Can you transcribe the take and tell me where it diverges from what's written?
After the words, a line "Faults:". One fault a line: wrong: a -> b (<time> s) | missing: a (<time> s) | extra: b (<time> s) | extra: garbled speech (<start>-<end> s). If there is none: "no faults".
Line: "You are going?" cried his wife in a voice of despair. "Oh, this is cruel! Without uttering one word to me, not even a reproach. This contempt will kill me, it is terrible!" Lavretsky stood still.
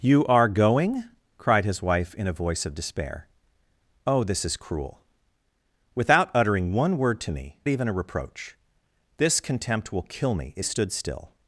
"You are going?" cried his wife in a voice of despair. "Oh, this is cruel! Without uttering one word to me, even a reproach. This contempt will kill me, it stood still.
Faults:
missing: not (7.6 s)
missing: is terrible Lavretsky (10.6 s)